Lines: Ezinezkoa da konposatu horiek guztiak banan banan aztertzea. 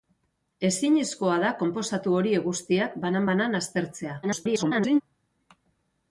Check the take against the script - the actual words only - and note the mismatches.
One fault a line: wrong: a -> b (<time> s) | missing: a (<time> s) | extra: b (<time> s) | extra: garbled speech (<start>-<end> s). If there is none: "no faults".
extra: garbled speech (4.2-5.0 s)